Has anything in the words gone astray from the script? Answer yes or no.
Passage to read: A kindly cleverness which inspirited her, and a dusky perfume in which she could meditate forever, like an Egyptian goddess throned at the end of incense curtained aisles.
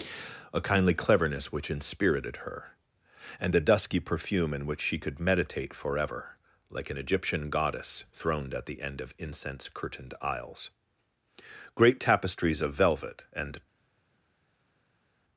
yes